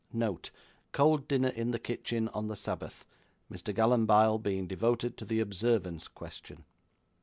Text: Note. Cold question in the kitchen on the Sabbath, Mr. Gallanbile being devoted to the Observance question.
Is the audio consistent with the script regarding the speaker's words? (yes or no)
no